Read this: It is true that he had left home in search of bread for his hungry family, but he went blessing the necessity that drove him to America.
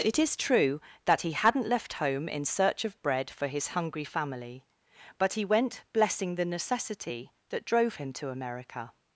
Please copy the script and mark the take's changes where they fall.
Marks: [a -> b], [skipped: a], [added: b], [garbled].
It is true that he [had -> hadn't] left home in search of bread for his hungry family, but he went blessing the necessity that drove him to America.